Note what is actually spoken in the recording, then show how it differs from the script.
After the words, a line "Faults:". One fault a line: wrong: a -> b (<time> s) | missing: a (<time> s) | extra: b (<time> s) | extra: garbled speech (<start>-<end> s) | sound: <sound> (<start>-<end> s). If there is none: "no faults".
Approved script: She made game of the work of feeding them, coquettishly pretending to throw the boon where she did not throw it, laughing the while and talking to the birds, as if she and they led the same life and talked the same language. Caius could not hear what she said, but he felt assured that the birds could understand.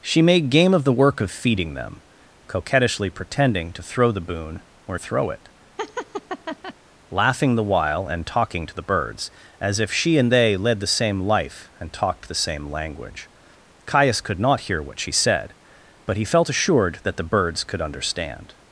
She made game of the work of feeding them, coquettishly pretending to throw the boon where throw it, laughing the while and talking to the birds, as if she and they led the same life and talked the same language. Caius could not hear what she said, but he felt assured that the birds could understand.
Faults:
missing: she did not (5.0 s)
sound: laugh (5.8-6.7 s)